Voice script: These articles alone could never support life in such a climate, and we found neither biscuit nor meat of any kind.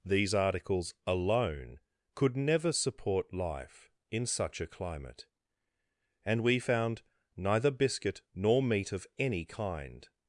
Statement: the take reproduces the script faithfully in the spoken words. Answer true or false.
true